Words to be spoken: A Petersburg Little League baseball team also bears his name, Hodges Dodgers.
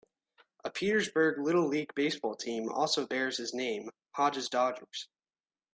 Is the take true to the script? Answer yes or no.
yes